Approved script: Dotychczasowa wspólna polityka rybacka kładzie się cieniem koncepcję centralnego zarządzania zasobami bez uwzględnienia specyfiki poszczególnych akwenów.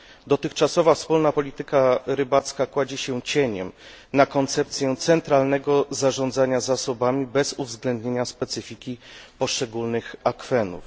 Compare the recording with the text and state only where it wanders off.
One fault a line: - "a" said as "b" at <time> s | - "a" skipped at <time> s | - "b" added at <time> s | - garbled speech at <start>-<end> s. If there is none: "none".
- "na" added at 4.1 s